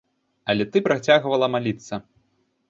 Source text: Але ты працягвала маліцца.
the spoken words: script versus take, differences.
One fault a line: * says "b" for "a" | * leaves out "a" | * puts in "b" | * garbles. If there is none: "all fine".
all fine